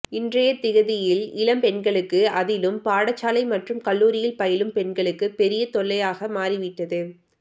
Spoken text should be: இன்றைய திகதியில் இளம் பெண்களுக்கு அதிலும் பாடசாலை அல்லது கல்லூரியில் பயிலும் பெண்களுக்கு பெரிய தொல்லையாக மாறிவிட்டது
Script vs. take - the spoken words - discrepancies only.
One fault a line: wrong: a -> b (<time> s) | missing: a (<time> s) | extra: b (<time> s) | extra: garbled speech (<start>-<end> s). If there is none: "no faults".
wrong: அல்லது -> மற்றும் (3.5 s)